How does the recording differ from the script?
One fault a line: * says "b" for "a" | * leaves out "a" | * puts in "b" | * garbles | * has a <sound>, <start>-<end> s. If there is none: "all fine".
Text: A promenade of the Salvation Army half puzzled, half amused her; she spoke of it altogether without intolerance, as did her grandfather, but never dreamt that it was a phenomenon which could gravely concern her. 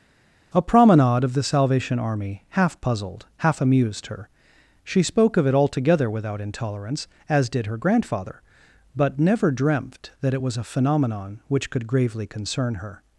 all fine